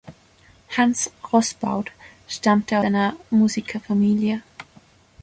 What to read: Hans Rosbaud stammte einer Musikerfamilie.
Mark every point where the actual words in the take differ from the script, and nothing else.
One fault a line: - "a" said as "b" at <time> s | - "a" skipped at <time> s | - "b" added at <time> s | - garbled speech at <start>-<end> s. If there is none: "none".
none